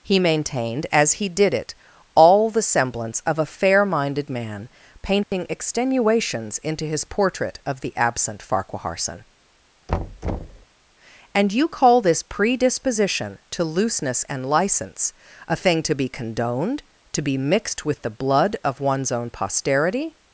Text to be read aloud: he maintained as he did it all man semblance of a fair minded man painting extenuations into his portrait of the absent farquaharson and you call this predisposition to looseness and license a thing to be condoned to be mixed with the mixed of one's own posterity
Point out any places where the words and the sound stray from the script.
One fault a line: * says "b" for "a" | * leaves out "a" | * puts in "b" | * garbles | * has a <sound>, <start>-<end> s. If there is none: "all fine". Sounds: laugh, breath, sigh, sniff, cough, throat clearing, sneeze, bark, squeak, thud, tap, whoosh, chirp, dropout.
* says "the" for "man"
* has a dropout, 5.2-5.3 s
* has a thud, 9.9-10.7 s
* says "blood" for "mixed"